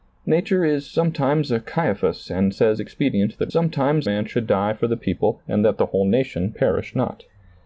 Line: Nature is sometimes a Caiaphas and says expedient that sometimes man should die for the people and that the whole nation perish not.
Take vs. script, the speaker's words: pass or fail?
pass